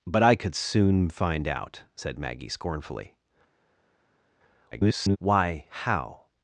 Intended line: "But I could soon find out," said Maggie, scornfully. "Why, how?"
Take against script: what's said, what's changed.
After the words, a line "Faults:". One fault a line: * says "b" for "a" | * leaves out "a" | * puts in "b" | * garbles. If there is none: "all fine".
"But I could soon find out," said Maggie, scornfully. [garbled] "Why, how?"
Faults:
* garbles